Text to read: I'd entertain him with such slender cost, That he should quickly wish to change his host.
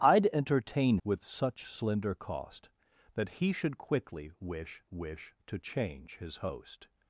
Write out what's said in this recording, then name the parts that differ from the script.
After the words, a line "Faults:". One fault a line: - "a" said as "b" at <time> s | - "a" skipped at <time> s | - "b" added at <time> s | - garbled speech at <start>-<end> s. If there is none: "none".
I'd entertain with such slender cost, That he should quickly wish wish to change his host.
Faults:
- "him" skipped at 1.0 s
- "wish" added at 4.9 s